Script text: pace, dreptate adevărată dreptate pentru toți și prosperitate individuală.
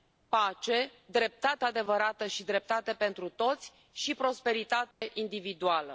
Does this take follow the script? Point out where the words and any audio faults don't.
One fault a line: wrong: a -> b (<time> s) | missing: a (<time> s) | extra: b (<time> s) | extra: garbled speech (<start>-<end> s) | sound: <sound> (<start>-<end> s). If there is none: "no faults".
extra: și (2.3 s)
sound: dropout (4.9-5.0 s)